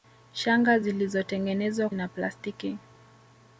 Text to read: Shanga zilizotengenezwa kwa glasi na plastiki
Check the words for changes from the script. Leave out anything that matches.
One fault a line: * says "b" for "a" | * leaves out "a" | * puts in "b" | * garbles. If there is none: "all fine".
* leaves out "kwa glasi"